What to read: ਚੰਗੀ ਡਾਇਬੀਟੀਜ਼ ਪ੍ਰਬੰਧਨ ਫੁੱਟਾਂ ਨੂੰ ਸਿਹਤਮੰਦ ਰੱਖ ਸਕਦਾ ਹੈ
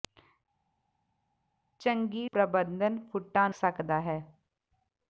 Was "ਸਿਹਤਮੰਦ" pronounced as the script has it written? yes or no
no